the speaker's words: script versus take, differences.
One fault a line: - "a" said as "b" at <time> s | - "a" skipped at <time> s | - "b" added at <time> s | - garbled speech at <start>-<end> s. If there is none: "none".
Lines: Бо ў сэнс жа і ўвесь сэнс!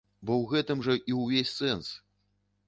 - "сэнс" said as "гэтым" at 0.5 s